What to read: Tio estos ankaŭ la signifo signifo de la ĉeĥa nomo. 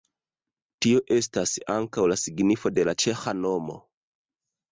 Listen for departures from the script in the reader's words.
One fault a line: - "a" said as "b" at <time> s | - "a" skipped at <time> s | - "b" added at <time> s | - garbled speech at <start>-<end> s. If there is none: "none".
- "estos" said as "estas" at 1.1 s
- "signifo" skipped at 2.7 s